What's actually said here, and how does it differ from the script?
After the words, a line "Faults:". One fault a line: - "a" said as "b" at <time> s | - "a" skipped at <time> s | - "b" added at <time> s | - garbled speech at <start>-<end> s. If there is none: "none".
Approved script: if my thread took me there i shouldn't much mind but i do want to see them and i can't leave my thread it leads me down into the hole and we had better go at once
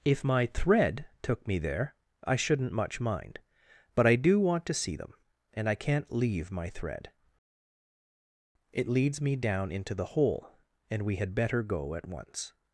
if my thread took me there i shouldn't much mind but i do want to see them and i can't leave my thread it leads me down into the hole and we had better go at once
Faults:
none